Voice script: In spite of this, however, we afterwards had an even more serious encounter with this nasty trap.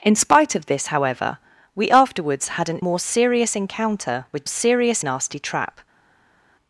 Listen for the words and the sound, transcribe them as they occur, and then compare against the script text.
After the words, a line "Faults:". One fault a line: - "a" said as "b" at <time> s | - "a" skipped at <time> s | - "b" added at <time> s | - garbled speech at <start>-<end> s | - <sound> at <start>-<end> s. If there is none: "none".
In spite of this, however, we afterwards had an more serious encounter with serious nasty trap.
Faults:
- "even" skipped at 2.8 s
- "this" said as "serious" at 4.5 s